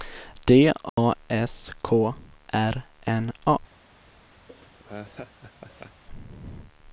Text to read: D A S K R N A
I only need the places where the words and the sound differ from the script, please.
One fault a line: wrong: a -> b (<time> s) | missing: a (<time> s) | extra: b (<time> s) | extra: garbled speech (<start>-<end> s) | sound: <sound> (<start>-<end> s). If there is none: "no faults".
sound: dropout (0.9-1.0 s)
sound: laugh (4.5-6.0 s)